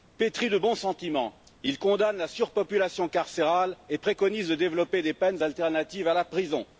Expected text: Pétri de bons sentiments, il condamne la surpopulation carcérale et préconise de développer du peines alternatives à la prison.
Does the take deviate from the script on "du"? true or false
true